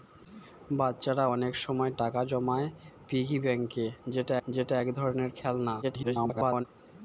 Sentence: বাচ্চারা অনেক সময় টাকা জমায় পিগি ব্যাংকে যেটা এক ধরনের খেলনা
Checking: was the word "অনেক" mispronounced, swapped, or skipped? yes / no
no